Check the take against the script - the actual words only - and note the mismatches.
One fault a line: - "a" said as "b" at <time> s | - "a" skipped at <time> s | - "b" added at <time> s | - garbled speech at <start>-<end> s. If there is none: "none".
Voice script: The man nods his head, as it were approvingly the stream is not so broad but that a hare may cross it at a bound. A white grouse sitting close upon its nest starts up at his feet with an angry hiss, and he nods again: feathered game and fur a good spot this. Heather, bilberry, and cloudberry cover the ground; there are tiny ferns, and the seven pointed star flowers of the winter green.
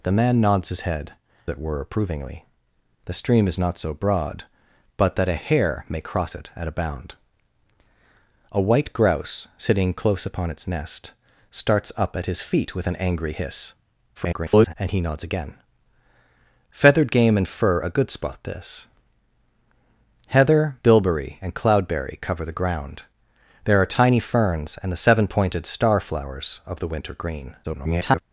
- "as" skipped at 1.1 s
- garbled speech at 14.1-14.7 s
- garbled speech at 27.6-28.2 s